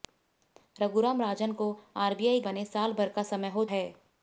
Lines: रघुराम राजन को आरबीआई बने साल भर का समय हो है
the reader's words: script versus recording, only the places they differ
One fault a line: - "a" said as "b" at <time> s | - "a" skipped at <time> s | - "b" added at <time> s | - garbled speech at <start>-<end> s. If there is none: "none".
none